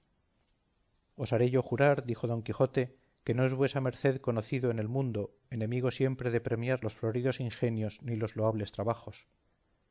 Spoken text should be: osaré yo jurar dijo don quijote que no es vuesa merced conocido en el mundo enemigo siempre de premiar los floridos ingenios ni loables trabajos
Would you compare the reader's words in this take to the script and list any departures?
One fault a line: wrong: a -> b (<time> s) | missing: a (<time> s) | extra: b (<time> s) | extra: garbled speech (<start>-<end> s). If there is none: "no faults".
extra: los (8.2 s)